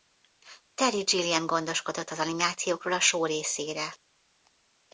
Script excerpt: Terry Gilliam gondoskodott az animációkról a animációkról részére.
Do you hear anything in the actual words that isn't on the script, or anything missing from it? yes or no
yes